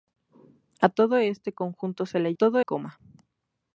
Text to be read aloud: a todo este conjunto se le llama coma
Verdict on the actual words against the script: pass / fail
fail